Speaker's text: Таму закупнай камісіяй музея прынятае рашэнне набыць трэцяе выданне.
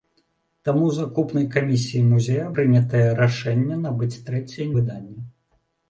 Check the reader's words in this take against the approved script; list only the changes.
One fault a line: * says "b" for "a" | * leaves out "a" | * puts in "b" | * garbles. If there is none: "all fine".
all fine